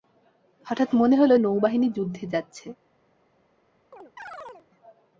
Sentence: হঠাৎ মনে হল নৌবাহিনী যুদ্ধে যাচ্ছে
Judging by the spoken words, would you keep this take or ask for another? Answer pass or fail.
pass